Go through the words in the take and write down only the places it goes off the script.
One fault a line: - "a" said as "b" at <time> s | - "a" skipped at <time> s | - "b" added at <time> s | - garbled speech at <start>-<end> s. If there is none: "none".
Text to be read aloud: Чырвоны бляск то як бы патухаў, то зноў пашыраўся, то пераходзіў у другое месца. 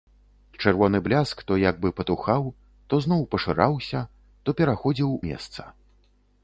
- "у другое" skipped at 5.1 s